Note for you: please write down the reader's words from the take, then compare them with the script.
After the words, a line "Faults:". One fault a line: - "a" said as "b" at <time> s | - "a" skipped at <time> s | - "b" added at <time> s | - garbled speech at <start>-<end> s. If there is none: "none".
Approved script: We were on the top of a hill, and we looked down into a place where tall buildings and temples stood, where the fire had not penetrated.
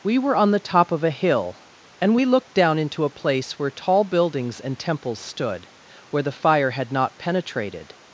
We were on the top of a hill, and we looked down into a place where tall buildings and temples stood, where the fire had not penetrated.
Faults:
none